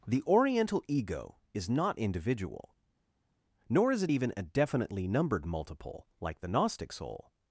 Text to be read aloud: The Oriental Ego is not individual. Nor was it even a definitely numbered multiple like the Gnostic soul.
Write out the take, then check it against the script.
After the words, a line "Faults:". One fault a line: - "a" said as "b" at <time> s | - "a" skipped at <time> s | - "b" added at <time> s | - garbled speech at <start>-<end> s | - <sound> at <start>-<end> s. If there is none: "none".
The Oriental Ego is not individual. Nor is it even a definitely numbered multiple like the Gnostic soul.
Faults:
- "was" said as "is" at 3.9 s